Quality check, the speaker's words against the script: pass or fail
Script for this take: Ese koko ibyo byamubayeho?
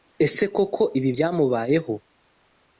fail